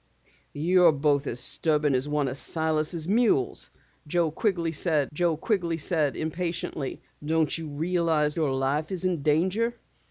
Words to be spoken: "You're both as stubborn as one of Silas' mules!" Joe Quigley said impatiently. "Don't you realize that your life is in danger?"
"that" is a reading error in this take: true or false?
true